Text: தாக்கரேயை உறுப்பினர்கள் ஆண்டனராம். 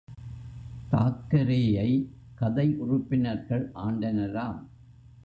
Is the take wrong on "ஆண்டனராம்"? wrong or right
right